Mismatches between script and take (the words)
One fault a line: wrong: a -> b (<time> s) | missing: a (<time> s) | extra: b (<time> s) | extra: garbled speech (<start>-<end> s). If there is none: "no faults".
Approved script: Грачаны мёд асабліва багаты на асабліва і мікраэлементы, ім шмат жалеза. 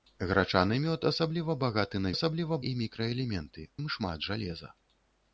no faults